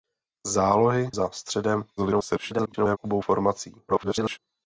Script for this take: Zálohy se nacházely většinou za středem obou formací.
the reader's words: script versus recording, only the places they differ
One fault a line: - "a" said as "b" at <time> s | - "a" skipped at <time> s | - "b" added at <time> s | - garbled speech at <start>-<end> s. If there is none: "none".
- "se nacházely většinou" skipped at 1.1 s
- garbled speech at 2.0-3.0 s
- garbled speech at 3.9-4.4 s